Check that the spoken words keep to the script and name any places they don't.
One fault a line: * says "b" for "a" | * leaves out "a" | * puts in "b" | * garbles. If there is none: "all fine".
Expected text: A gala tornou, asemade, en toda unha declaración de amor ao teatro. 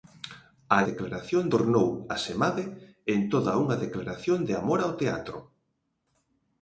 * says "declaración" for "gala"